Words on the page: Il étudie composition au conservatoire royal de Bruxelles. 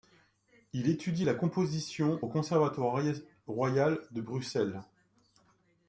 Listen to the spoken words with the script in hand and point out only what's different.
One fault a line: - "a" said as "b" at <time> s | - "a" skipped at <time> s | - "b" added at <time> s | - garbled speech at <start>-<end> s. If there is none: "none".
- "la" added at 1.2 s